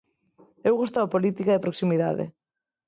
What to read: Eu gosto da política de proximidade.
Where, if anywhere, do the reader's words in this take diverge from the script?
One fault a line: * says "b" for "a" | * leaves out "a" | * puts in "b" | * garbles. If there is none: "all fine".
all fine